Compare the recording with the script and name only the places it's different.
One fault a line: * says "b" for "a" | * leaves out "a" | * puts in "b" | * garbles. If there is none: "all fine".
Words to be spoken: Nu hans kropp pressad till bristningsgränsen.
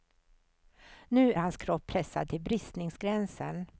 all fine